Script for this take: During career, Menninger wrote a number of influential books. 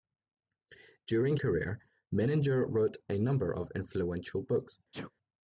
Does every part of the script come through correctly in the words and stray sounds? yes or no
no